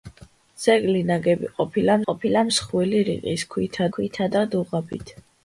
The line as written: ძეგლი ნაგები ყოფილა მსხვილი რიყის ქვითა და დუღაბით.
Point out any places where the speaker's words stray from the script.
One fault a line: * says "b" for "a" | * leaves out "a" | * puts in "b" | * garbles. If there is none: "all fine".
* puts in "ყოფილა"
* puts in "ქვითა"